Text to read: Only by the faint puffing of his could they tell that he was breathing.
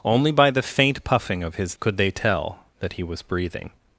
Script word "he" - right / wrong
right